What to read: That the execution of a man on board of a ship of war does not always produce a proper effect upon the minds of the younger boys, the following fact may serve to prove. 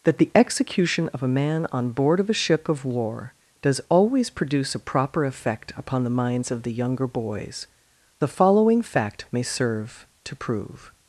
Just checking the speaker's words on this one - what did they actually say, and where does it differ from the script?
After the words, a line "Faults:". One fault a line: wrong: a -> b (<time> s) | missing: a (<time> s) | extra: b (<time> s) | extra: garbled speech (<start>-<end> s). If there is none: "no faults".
That the execution of a man on board of a ship of war does always produce a proper effect upon the minds of the younger boys, the following fact may serve to prove.
Faults:
missing: not (3.8 s)